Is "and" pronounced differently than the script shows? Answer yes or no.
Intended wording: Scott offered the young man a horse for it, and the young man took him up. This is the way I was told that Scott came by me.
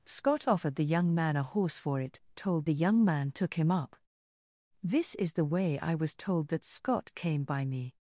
yes